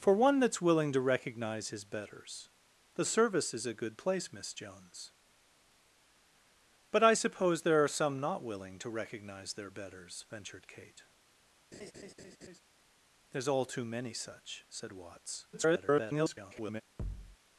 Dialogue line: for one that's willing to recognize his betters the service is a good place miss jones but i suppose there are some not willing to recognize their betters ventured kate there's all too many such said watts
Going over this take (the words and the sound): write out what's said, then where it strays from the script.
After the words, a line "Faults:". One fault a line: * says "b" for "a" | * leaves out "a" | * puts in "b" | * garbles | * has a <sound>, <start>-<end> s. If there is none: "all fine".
for one that's willing to recognize his betters the service is a good place miss jones but i suppose there are some not willing to recognize their betters ventured kate there's all too many such said watts [garbled]
Faults:
* has a laugh, 11.7-12.6 s
* garbles
* has a thud, 17.0-17.4 s